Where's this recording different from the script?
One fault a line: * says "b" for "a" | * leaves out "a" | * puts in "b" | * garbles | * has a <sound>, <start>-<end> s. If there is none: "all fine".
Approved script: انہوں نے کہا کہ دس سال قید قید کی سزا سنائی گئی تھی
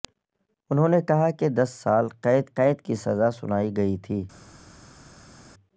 all fine